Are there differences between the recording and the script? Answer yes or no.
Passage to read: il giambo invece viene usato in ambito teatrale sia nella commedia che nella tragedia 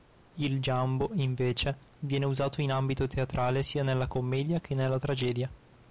no